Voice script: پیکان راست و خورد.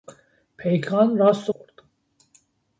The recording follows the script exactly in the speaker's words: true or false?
true